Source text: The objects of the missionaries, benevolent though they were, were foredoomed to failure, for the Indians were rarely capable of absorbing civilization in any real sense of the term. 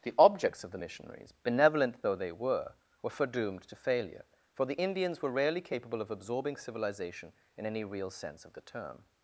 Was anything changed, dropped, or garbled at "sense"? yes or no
no